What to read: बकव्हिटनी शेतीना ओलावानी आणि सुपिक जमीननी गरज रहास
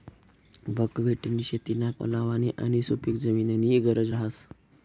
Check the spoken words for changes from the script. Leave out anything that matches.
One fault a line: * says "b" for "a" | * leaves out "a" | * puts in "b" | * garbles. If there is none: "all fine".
all fine